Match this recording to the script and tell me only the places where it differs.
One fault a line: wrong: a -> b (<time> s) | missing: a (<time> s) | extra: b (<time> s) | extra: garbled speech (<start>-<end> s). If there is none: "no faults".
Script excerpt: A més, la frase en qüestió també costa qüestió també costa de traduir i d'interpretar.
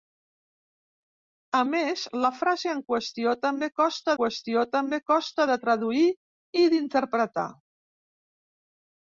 no faults